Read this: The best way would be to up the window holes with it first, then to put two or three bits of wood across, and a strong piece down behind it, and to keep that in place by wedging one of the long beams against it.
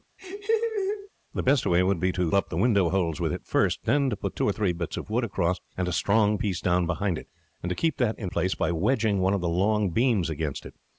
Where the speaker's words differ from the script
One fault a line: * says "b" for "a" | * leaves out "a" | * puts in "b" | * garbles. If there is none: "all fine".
all fine